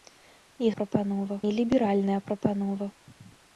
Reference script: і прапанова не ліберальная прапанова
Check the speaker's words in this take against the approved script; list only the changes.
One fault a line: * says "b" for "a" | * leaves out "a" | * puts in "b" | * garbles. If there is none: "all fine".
all fine